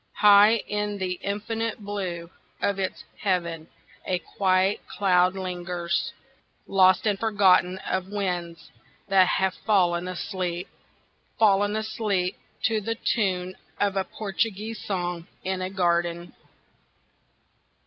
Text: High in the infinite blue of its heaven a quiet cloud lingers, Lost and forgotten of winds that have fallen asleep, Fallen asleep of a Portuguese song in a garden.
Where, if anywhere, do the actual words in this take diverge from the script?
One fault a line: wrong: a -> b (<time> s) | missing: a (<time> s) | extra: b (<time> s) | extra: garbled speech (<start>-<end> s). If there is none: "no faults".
extra: to the tune (12.6 s)